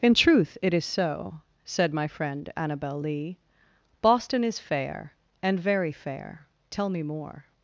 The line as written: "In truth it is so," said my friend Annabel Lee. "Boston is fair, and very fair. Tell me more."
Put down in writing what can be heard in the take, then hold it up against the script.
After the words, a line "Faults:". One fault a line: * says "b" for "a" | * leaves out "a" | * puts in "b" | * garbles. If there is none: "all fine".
"In truth it is so," said my friend Annabel Lee. "Boston is fair, and very fair. Tell me more."
Faults:
all fine